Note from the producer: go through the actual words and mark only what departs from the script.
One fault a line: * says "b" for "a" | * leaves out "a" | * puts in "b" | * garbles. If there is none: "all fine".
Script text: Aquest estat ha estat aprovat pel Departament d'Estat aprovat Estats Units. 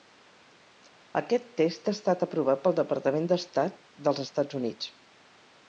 * says "test" for "estat"
* says "dels" for "aprovat"